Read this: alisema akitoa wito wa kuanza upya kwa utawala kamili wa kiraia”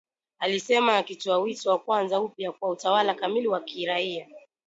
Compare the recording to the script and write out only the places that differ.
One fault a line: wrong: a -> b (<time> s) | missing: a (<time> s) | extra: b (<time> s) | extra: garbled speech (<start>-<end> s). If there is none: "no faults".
no faults